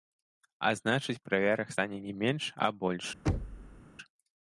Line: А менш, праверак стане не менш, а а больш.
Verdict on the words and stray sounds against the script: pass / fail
fail